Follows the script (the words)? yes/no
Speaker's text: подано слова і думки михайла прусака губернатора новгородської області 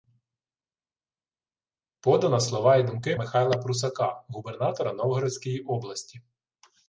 yes